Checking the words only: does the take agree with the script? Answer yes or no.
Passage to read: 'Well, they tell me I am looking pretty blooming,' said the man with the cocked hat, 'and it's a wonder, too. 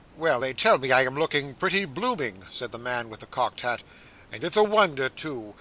yes